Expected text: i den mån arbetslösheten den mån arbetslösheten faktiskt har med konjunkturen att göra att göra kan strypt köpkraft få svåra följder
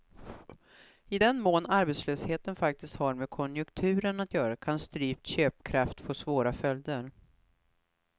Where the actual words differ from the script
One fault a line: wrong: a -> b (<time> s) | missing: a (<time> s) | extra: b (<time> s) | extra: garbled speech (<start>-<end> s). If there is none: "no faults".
missing: den mån arbetslösheten (2.5 s)
missing: att göra (4.6 s)